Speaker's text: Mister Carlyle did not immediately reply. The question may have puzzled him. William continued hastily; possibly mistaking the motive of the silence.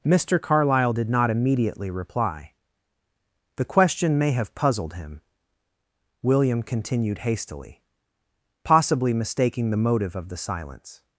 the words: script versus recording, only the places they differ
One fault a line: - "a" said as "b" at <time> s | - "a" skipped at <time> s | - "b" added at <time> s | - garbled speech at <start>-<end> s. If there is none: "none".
none